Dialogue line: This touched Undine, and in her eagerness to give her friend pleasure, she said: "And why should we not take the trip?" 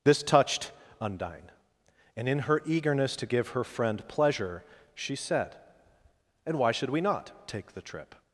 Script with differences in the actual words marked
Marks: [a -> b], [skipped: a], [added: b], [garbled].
This touched Undine, and in her eagerness to give her friend pleasure, she said: "And why should we not take the trip?"